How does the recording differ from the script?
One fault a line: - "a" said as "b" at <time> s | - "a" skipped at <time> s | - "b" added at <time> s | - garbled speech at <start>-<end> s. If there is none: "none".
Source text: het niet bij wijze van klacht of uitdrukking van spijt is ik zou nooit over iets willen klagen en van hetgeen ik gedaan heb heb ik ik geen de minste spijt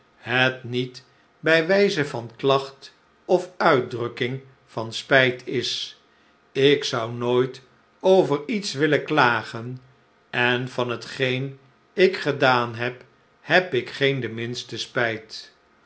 - "ik" skipped at 13.9 s